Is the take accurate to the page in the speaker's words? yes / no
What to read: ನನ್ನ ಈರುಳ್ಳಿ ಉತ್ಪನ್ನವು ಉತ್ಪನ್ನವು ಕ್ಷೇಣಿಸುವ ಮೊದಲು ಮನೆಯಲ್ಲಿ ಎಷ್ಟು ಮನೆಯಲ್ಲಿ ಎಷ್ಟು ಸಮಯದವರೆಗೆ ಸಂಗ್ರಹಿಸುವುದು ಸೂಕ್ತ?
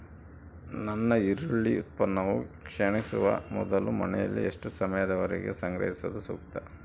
no